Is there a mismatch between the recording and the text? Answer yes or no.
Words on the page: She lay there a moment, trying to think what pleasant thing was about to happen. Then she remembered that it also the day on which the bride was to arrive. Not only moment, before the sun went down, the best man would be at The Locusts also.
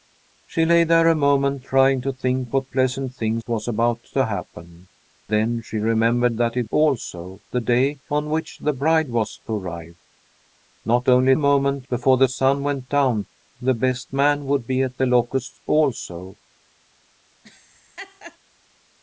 no